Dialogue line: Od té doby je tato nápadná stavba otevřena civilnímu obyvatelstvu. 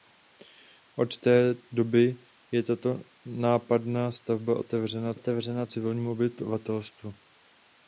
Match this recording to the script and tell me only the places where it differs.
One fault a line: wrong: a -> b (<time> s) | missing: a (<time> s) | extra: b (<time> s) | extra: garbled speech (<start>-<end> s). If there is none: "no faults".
extra: otevřena (5.1 s)